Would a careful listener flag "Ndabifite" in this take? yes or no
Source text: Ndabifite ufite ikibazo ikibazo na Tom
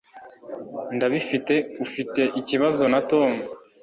no